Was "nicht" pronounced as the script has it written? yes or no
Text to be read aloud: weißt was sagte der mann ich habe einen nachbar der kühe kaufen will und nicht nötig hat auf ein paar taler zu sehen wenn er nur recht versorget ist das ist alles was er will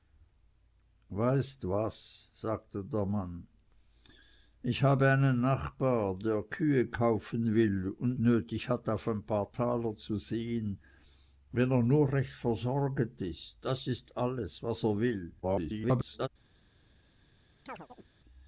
no